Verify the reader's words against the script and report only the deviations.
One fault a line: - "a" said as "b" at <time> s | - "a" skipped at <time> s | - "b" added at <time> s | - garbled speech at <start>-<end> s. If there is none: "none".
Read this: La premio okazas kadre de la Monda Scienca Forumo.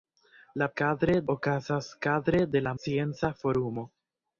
- "premio" said as "kadre" at 0.8 s
- "Monda" skipped at 2.8 s